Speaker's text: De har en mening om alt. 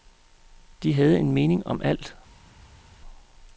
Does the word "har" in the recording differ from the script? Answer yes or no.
yes